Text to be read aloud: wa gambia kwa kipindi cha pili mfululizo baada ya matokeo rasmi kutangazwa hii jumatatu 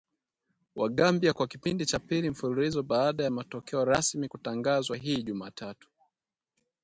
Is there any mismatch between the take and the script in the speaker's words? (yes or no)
no